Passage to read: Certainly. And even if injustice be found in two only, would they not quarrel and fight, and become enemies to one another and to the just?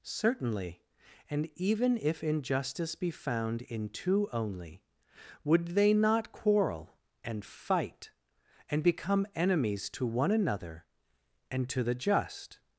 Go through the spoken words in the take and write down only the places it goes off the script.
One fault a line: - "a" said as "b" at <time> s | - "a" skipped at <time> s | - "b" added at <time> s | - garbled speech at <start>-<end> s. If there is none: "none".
none